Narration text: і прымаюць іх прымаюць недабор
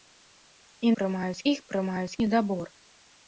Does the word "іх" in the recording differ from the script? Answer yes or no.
no